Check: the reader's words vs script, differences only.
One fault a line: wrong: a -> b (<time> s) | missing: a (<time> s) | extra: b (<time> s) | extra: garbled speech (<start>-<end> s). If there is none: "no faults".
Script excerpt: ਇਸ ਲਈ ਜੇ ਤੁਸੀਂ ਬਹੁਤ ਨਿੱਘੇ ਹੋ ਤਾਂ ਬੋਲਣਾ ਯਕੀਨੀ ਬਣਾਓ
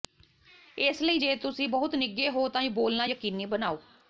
no faults